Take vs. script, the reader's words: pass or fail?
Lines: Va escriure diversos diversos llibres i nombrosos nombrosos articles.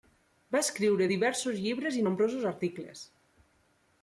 fail